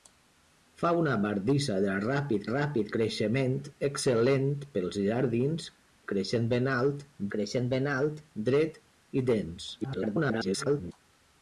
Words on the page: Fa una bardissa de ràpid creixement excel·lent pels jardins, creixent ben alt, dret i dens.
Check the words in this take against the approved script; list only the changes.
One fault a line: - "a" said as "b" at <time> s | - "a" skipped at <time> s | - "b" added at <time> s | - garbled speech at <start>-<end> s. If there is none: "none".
- "ràpid" added at 2.5 s
- "creixent ben alt" added at 7.4 s
- garbled speech at 9.8-10.9 s